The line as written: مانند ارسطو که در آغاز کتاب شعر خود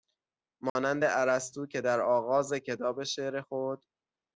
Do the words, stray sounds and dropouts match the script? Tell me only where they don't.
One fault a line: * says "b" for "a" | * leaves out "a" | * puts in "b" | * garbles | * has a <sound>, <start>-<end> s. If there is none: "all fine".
* has a dropout, 0.7-0.8 s